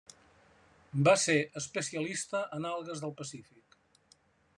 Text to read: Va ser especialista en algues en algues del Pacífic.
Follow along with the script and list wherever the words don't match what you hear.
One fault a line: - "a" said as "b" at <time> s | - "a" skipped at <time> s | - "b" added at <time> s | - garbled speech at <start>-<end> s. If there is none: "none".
- "en algues" skipped at 3.0 s